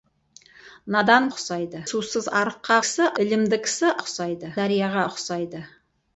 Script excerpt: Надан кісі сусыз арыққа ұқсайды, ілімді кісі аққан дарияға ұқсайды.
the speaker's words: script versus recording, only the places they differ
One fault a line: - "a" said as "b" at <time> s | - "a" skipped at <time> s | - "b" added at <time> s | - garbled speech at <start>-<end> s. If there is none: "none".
- "кісі" said as "ұқсайды" at 1.3 s
- "ұқсайды" said as "кісі" at 2.8 s
- "аққан" said as "ұқсайды" at 4.0 s